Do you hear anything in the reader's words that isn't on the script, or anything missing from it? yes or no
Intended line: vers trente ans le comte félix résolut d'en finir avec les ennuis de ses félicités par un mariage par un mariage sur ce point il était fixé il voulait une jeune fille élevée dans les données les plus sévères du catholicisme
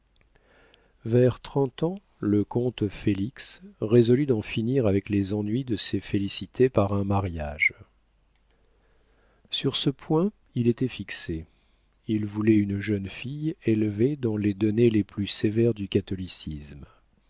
yes